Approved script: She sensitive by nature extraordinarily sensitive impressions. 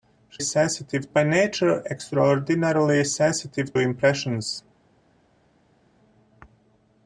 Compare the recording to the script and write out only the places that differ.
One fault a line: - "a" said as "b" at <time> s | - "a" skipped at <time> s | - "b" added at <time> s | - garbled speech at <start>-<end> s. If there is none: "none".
none